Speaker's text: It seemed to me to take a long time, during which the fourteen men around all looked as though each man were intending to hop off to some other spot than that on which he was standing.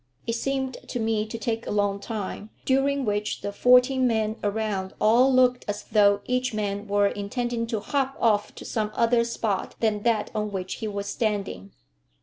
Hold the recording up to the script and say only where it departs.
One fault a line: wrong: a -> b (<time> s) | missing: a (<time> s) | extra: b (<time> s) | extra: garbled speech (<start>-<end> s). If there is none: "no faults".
no faults